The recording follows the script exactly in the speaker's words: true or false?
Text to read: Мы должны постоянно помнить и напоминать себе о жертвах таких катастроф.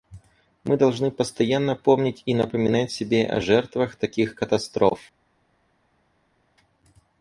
true